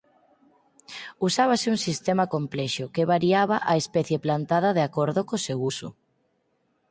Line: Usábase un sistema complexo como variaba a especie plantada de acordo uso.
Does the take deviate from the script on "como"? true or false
true